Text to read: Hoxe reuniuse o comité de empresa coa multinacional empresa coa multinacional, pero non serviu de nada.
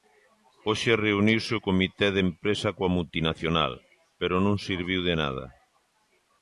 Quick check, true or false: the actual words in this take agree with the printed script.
false